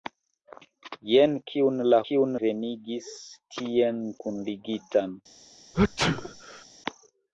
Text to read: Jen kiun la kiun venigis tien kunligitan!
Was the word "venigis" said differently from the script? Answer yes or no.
no